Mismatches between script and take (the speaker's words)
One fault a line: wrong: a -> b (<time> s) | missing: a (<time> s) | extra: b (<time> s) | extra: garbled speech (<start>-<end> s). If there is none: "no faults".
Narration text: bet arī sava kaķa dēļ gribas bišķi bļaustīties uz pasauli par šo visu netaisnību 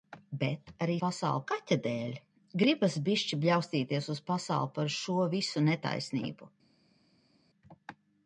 wrong: sava -> pasauli (1.0 s)